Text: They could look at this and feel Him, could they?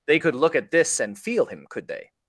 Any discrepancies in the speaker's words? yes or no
no